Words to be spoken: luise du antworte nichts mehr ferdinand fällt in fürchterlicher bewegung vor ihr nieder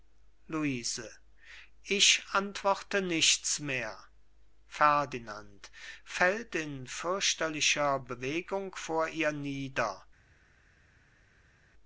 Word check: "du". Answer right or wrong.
wrong